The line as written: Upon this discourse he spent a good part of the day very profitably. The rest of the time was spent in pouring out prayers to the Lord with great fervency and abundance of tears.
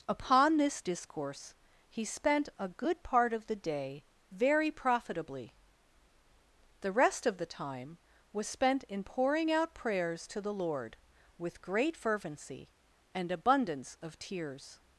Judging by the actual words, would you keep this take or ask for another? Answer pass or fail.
pass